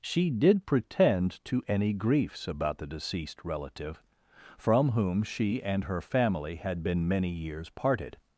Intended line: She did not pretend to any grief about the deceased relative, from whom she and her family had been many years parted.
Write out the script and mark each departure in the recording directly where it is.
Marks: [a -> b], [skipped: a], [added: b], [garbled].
She did [skipped: not] pretend to any [grief -> griefs] about the deceased relative, from whom she and her family had been many years parted.